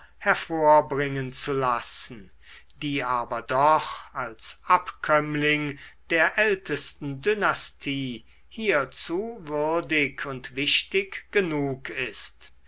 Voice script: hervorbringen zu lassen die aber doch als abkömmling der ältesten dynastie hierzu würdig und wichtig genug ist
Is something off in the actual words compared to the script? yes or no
no